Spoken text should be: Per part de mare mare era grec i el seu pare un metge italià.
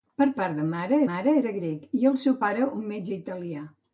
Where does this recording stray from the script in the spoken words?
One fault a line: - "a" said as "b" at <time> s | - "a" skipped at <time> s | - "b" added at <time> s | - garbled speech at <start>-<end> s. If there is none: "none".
none